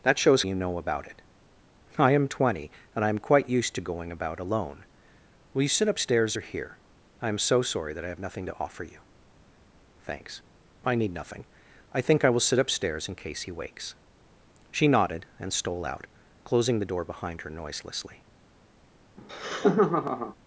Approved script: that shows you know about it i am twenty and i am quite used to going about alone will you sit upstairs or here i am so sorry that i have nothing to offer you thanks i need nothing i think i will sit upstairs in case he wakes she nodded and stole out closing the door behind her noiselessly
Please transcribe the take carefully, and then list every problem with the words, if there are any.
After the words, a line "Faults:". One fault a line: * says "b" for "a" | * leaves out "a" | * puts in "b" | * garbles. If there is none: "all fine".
that shows you know about it i am twenty and i am quite used to going about alone will you sit upstairs or here i am so sorry that i have nothing to offer you thanks i need nothing i think i will sit upstairs in case he wakes she nodded and stole out closing the door behind her noiselessly
Faults:
all fine